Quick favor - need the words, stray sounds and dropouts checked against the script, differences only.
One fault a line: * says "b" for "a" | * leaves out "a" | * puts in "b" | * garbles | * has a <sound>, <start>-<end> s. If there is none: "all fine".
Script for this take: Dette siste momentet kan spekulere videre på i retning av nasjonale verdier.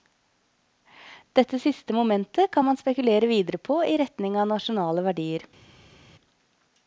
* puts in "man"